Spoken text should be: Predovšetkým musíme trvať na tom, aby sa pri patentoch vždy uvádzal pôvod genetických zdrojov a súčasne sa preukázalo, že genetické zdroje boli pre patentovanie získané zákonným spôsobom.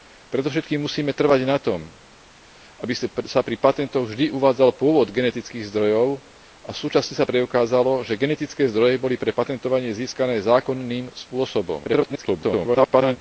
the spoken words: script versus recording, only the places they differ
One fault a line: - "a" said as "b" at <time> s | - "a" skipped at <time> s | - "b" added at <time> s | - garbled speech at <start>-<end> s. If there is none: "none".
- garbled speech at 11.8-13.2 s